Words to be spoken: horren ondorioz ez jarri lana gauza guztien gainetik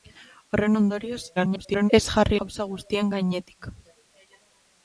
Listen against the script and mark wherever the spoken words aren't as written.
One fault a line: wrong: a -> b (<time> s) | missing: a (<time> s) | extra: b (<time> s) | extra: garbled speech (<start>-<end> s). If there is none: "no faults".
extra: garbled speech (1.4-1.9 s)
missing: lana (2.4 s)